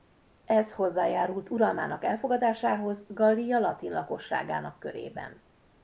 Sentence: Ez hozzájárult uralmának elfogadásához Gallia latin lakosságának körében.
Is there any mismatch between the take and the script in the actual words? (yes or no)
no